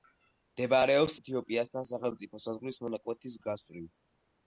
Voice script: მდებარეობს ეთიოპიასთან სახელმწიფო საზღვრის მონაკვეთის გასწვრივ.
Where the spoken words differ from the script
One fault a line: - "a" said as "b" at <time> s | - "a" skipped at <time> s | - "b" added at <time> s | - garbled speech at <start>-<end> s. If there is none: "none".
none